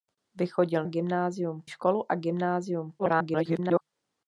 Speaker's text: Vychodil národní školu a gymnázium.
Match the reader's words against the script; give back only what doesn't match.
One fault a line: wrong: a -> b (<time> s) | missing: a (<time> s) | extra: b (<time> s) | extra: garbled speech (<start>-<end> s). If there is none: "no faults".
wrong: národní -> gymnázium (0.8 s)
extra: garbled speech (3.0-3.8 s)